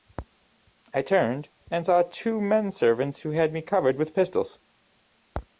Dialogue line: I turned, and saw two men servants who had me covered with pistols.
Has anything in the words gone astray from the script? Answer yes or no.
no